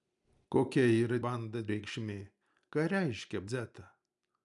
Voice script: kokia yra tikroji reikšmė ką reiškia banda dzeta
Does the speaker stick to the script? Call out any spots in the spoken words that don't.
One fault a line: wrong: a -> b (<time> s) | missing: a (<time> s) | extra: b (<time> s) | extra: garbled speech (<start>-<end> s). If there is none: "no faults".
wrong: tikroji -> banda (1.3 s)
missing: banda (3.5 s)